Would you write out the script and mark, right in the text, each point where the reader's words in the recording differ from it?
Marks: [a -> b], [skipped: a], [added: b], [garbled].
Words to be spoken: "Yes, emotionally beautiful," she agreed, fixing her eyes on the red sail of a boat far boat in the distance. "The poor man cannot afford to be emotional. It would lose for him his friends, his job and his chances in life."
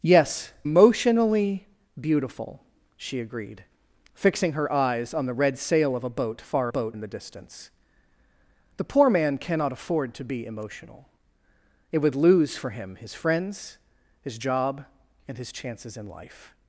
"Yes, emotionally beautiful," she agreed, fixing her eyes on the red sail of a boat far boat in the distance. "The poor man cannot afford to be emotional. It would lose for him his friends, his job and his chances in life."